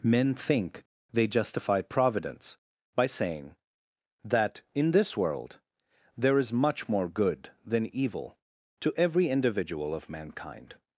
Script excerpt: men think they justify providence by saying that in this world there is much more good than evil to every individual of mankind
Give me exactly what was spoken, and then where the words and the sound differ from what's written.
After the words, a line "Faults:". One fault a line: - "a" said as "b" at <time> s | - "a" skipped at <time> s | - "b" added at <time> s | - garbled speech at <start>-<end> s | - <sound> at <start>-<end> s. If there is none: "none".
men think they justify providence by saying that in this world there is much more good than evil to every individual of mankind
Faults:
none